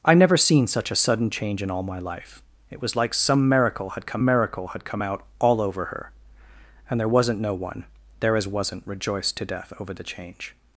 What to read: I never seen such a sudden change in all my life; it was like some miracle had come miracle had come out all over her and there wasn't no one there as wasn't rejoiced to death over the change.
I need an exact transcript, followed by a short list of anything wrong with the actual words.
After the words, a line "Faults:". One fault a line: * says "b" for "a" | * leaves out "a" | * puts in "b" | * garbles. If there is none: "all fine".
I never seen such a sudden change in all my life; it was like some miracle had come miracle had come out all over her and there wasn't no one there as wasn't rejoiced to death over the change.
Faults:
all fine